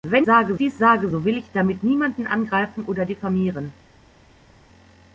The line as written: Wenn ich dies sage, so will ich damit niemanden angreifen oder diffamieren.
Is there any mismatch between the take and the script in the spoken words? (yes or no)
yes